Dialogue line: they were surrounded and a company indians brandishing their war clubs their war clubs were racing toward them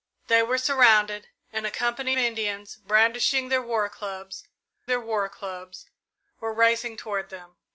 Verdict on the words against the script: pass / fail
pass